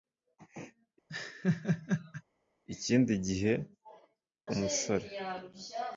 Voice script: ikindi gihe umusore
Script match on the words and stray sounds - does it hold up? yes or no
no